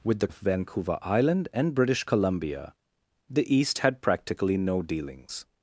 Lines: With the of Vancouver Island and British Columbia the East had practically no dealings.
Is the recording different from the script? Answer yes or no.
no